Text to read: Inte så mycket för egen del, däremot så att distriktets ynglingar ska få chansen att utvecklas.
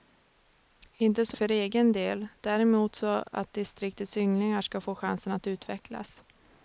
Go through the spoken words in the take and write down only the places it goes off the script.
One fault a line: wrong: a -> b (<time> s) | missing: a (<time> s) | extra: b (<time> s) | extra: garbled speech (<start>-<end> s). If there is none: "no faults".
missing: mycket (1.4 s)